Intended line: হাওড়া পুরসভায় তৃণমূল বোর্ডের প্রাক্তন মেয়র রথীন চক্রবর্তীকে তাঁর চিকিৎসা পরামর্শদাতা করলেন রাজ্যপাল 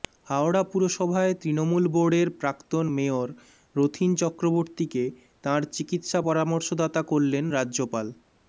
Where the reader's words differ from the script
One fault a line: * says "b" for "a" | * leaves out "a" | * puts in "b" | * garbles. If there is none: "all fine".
all fine